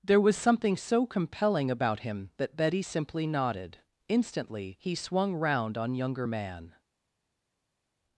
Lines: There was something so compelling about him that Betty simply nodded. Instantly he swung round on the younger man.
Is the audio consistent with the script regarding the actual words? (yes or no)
no